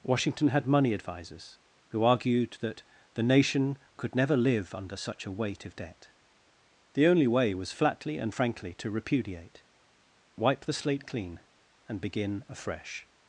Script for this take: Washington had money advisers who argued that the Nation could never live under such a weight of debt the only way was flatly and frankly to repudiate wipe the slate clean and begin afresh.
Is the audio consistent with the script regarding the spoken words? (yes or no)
yes